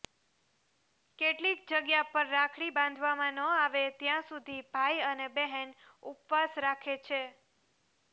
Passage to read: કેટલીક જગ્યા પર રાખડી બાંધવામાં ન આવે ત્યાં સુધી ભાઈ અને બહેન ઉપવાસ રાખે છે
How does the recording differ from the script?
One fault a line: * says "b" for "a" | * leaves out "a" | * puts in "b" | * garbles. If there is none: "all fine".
all fine